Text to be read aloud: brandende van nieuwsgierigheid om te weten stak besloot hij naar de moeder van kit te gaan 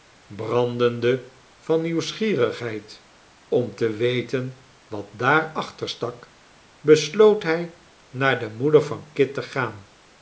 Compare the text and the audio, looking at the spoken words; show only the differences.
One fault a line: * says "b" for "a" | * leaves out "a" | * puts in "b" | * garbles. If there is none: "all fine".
* puts in "wat daar achter"